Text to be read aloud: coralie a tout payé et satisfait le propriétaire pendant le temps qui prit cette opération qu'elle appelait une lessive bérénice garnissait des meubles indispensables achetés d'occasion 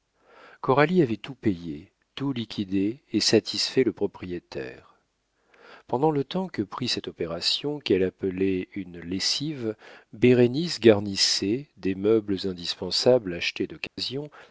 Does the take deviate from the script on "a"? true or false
true